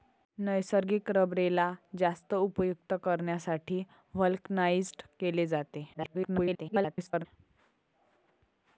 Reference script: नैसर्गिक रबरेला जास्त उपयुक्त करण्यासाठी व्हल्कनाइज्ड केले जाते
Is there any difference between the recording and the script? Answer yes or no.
yes